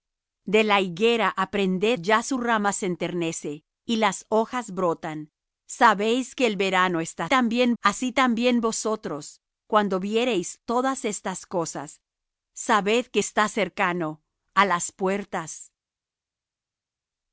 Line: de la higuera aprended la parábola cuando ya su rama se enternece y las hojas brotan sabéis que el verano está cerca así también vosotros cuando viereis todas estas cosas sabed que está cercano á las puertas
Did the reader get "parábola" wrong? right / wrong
wrong